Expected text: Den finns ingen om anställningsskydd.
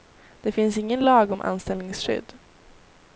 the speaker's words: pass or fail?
fail